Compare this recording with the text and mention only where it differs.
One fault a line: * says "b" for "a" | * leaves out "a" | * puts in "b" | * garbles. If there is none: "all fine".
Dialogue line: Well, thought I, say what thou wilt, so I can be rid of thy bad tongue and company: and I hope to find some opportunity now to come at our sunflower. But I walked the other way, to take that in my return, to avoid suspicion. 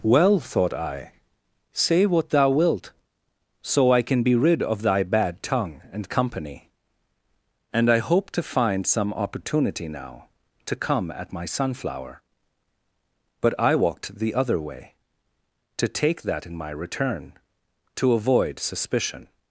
* says "my" for "our"